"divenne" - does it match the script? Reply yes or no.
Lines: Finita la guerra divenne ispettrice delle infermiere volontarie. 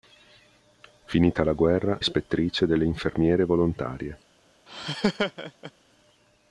no